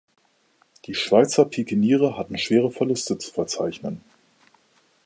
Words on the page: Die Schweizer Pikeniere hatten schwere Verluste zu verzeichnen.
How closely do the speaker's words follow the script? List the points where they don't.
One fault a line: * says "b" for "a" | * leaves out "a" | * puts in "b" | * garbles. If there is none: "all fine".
all fine